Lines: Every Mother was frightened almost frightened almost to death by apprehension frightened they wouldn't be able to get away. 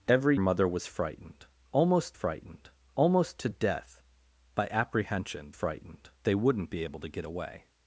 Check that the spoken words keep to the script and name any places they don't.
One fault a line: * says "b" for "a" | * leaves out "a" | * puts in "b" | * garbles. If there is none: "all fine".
all fine